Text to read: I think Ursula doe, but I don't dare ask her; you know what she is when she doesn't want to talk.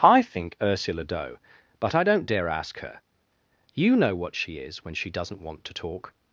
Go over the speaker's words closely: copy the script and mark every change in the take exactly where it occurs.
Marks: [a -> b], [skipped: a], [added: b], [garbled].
I think Ursula doe, but I don't dare ask her; you know what she is when she doesn't want to talk.